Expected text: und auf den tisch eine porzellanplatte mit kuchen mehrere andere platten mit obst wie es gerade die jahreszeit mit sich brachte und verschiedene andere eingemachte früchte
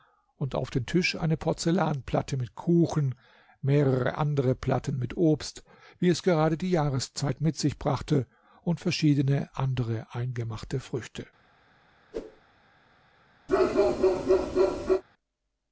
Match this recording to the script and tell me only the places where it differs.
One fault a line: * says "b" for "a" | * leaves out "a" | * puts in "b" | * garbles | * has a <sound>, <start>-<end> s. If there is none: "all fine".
* has a whoosh, 12.1-12.4 s
* has a bark, 13.5-15.0 s